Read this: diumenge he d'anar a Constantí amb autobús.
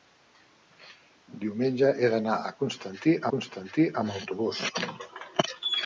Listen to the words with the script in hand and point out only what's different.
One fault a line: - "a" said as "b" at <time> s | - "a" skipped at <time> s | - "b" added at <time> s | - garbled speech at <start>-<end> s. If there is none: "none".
- "Constantí" added at 3.4 s